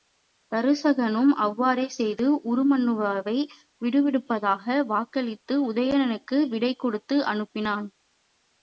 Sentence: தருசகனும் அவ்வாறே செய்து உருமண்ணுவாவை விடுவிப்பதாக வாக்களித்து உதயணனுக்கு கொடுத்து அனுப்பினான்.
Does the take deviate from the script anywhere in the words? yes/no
yes